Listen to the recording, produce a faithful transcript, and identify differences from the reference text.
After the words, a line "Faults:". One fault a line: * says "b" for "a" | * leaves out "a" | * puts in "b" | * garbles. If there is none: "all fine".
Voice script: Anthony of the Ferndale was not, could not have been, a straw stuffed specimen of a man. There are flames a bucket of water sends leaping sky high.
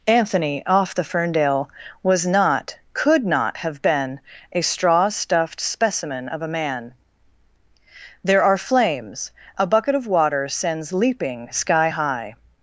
Anthony off the Ferndale was not, could not have been, a straw stuffed specimen of a man. There are flames a bucket of water sends leaping sky high.
Faults:
* says "off" for "of"